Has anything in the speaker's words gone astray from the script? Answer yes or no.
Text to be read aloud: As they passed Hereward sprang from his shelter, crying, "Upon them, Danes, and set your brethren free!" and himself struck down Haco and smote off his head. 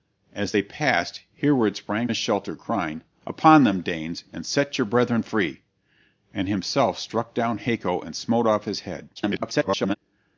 yes